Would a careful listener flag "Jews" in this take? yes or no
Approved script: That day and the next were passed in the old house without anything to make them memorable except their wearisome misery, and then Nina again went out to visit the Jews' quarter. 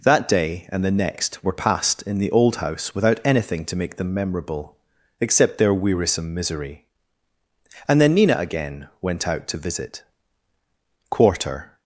yes